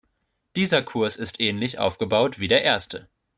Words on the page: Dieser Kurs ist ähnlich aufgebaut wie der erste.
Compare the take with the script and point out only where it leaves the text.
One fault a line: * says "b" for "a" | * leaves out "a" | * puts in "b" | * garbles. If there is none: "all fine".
all fine